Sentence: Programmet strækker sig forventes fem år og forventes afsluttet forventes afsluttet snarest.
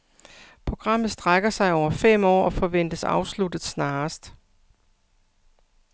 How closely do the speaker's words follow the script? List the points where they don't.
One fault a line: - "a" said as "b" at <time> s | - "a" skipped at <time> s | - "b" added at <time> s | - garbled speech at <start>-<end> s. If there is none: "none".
- "forventes" said as "over" at 1.7 s
- "forventes afsluttet" skipped at 3.6 s